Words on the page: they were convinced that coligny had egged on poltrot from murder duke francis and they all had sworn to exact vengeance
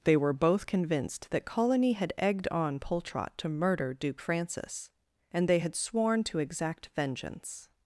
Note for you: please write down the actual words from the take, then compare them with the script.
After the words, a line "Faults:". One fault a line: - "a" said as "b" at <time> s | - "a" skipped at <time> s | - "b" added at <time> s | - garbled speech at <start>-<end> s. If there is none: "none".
they were both convinced that coligny had egged on poltrot to murder duke francis and they had sworn to exact vengeance
Faults:
- "both" added at 0.3 s
- "from" said as "to" at 3.4 s
- "all" skipped at 5.6 s